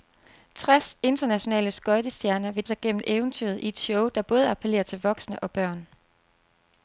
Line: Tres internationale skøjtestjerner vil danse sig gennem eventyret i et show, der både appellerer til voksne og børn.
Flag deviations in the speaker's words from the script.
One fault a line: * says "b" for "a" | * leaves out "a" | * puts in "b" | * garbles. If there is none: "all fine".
* leaves out "danse"